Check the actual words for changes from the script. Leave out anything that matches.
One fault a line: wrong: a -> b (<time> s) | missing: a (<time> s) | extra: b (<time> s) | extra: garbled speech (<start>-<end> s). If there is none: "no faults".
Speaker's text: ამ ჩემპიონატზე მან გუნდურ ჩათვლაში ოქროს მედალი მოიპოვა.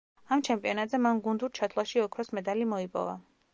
no faults